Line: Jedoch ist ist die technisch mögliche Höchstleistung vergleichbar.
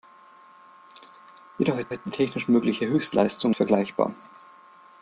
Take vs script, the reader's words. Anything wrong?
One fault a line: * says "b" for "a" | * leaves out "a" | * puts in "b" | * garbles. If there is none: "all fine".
all fine